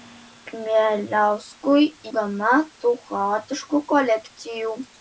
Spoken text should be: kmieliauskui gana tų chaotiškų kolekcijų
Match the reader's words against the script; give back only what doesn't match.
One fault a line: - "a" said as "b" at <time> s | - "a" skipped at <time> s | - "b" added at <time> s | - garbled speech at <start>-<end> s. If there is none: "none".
none